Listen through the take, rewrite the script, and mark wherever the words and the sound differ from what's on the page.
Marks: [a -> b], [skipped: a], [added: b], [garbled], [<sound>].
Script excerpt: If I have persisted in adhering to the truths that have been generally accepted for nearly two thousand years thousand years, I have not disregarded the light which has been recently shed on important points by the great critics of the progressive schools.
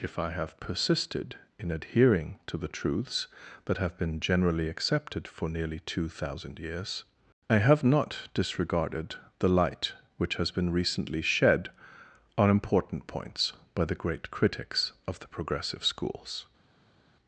If I have persisted in adhering to the truths that have been generally accepted for nearly two thousand years [skipped: thousand years,] I have not disregarded the light which has been recently shed on important points by the great critics of the progressive schools.